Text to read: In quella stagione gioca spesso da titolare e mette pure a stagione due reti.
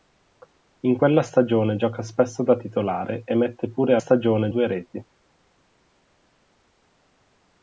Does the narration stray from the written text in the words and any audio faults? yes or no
no